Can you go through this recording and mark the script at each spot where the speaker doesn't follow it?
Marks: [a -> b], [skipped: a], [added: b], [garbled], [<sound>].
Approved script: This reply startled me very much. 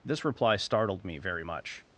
This reply startled me very much.